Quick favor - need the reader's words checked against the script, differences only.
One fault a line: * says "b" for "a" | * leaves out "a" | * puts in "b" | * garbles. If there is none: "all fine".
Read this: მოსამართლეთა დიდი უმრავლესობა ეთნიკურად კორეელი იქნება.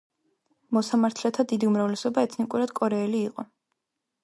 * says "იყო" for "იქნება"